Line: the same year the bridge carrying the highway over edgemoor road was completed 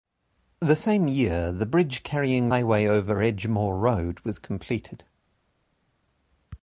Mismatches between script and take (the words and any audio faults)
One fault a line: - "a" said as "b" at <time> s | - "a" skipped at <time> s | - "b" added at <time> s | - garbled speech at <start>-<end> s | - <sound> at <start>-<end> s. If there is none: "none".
- "the" skipped at 2.5 s